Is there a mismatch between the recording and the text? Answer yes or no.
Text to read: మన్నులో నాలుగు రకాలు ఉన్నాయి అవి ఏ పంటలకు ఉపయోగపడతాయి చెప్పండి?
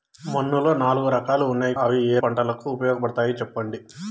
no